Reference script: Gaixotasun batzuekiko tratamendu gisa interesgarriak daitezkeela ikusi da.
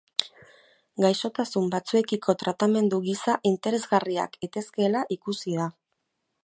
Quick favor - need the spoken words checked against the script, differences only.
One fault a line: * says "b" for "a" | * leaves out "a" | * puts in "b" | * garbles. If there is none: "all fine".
all fine